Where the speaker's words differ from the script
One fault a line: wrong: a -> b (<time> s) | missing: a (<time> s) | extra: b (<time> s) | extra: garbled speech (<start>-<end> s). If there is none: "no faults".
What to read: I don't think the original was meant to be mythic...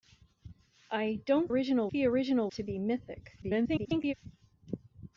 wrong: think -> original (1.5 s)
missing: was meant (2.5 s)
extra: garbled speech (3.4-4.1 s)